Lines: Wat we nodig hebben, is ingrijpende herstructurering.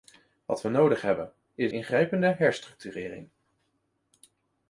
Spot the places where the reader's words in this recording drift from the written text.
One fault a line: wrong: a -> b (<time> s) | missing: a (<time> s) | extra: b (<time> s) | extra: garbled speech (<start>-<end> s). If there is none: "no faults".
no faults